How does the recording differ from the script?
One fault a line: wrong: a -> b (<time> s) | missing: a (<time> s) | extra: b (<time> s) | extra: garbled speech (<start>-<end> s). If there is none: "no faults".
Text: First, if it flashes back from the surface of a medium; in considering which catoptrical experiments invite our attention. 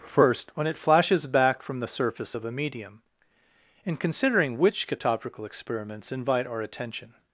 wrong: if -> when (0.6 s)